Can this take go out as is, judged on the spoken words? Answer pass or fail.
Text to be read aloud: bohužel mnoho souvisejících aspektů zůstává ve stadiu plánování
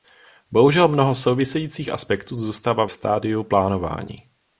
fail